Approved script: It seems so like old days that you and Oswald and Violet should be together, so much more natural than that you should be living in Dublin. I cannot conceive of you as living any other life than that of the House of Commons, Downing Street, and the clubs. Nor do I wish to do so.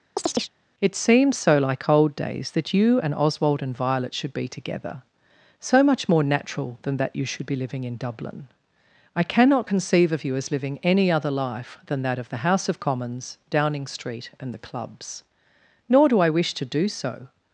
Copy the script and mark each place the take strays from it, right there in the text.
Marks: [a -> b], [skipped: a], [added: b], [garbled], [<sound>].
[chirp] It seems so like old days that you and Oswald and Violet should be together, so much more natural than that you should be living in Dublin. I cannot conceive of you as living any other life than that of the House of Commons, Downing Street, and the clubs. Nor do I wish to do so.